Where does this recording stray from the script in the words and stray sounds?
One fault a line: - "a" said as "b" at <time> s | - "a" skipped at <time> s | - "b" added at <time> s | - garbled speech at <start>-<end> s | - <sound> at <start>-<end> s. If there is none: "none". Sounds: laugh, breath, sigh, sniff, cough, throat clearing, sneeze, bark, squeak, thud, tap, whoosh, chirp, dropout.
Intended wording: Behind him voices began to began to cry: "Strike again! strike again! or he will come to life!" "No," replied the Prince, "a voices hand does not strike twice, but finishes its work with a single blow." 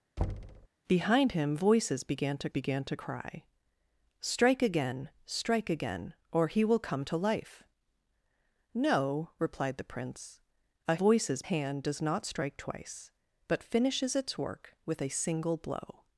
- thud at 0.2-0.7 s